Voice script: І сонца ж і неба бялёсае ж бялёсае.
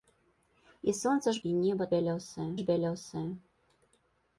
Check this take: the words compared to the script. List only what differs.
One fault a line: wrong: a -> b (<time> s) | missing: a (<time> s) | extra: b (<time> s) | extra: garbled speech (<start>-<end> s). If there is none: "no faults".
no faults